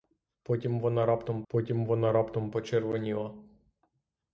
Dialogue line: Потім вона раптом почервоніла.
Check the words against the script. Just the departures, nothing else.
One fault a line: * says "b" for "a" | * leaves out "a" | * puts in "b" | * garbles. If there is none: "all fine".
* puts in "потім вона раптом"